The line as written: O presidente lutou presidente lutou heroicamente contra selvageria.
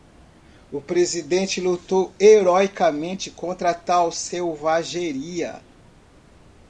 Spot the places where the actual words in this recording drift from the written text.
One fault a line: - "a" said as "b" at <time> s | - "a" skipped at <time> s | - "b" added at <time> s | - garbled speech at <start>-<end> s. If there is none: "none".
- "presidente lutou" skipped at 2.1 s
- "tal" added at 3.7 s